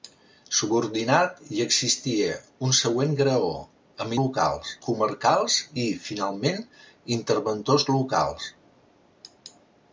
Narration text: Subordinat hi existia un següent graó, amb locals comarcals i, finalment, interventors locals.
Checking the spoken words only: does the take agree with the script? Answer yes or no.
yes